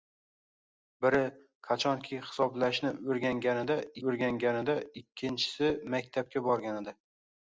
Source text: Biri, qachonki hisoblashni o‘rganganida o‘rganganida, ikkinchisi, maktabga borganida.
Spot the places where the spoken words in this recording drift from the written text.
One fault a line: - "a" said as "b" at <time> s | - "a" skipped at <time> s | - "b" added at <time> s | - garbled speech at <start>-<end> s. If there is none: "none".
none